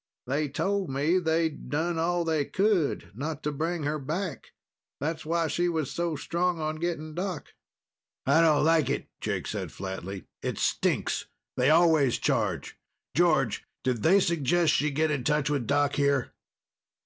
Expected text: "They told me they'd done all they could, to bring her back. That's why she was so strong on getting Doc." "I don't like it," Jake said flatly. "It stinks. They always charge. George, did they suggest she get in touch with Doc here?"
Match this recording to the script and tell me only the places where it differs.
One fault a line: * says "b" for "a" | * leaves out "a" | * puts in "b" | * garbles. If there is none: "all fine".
* puts in "not"